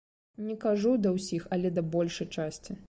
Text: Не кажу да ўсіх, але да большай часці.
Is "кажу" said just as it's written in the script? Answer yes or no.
yes